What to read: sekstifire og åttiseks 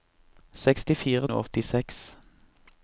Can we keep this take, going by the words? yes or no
yes